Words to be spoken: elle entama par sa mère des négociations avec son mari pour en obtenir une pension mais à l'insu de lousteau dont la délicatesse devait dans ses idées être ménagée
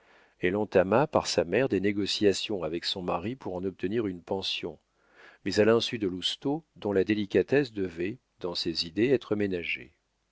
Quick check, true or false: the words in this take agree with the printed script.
true